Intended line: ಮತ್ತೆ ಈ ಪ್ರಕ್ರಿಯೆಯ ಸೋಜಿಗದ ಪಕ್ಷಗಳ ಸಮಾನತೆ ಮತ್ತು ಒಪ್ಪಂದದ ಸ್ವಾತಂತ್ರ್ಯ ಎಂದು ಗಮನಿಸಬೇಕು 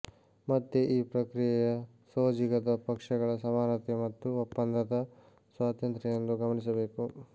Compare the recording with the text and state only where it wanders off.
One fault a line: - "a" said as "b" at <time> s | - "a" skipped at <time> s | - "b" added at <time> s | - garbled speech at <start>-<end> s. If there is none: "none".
none